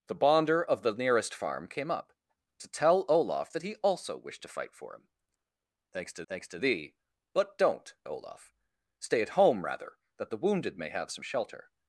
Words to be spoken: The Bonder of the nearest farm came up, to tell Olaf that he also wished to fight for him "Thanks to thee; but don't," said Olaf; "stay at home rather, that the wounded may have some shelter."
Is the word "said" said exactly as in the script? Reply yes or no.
no